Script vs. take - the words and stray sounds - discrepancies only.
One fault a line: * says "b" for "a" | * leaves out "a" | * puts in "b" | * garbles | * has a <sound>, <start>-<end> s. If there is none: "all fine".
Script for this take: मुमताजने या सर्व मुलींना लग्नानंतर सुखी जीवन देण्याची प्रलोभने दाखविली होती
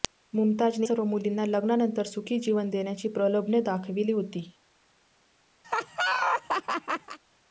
* leaves out "या"
* has a laugh, 5.6-7.2 s